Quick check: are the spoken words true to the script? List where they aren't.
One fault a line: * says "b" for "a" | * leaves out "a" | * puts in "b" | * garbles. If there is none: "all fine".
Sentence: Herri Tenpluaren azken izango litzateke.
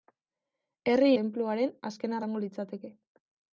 all fine